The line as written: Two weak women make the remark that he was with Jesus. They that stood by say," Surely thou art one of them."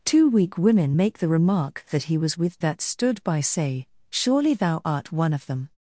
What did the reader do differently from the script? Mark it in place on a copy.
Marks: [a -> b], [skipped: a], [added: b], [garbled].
Two weak women make the remark that he was with [skipped: Jesus. They] that stood by say," Surely thou art one of them."